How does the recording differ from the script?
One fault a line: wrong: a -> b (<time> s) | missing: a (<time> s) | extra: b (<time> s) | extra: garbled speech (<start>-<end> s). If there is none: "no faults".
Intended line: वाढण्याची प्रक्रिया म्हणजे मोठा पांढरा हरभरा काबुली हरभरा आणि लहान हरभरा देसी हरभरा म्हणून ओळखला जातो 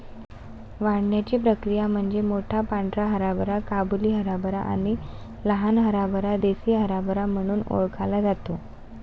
no faults